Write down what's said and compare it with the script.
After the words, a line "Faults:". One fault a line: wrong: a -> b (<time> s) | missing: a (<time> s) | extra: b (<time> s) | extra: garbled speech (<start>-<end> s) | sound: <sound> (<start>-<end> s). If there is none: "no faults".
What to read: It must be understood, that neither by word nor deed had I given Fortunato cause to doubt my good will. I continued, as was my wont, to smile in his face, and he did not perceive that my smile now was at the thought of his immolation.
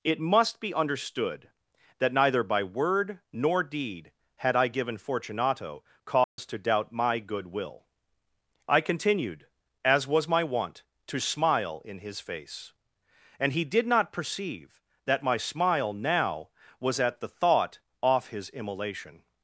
It must be understood, that neither by word nor deed had I given Fortunato cause to doubt my good will. I continued, as was my wont, to smile in his face, and he did not perceive that my smile now was at the thought off his immolation.
Faults:
sound: dropout (6.2-6.4 s)
wrong: of -> off (18.0 s)